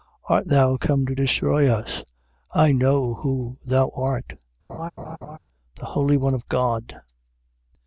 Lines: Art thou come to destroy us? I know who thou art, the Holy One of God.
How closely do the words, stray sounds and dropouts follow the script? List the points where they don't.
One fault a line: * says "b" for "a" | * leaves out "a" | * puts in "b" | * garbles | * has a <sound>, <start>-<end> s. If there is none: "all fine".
* has a laugh, 4.7-5.4 s